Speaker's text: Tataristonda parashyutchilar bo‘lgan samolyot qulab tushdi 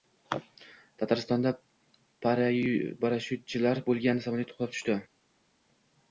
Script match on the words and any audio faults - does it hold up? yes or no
yes